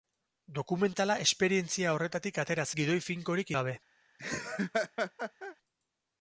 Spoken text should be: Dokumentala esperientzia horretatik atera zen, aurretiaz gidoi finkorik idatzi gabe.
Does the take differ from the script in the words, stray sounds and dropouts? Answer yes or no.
yes